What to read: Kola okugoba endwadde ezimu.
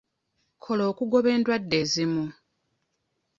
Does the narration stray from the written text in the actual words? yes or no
no